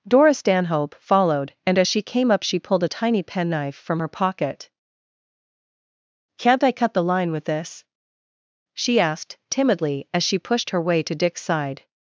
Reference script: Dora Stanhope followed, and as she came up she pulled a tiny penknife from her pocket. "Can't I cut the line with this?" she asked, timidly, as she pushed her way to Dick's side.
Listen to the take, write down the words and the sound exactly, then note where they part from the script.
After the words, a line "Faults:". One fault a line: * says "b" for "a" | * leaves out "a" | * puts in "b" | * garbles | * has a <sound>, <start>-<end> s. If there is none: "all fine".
Dora Stanhope followed, and as she came up she pulled a tiny penknife from her pocket. "Can't I cut the line with this?" she asked, timidly, as she pushed her way to Dick's side.
Faults:
all fine